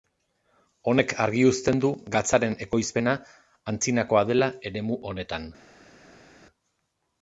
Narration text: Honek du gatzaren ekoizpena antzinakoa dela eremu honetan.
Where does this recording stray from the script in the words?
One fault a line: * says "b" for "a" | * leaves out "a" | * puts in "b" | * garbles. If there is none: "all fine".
* puts in "argi uzten"